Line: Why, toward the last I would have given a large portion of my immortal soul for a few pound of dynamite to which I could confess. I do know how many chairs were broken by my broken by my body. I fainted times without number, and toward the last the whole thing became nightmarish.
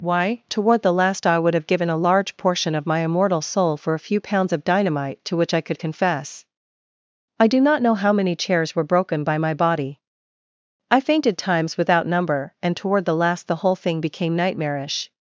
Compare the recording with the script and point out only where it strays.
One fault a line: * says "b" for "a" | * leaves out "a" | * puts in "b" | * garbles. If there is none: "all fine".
* says "pounds" for "pound"
* puts in "not"
* leaves out "broken by my"